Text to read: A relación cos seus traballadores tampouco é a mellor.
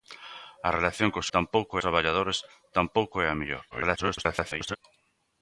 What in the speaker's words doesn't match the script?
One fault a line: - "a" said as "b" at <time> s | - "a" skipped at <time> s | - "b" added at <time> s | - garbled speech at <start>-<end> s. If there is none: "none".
- "seus" said as "tampouco" at 1.3 s
- garbled speech at 3.7-4.8 s